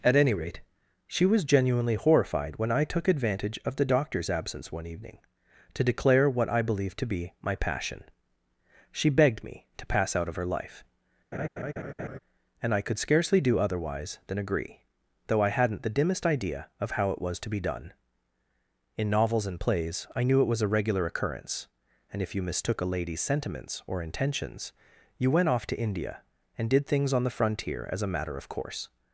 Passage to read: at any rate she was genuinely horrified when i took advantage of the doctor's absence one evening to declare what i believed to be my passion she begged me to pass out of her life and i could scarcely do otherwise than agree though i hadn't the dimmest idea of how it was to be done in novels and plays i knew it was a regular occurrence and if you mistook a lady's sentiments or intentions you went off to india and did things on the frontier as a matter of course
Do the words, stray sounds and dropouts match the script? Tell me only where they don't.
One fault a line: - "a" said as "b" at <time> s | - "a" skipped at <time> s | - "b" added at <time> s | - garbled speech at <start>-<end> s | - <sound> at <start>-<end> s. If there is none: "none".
- laugh at 11.3-12.2 s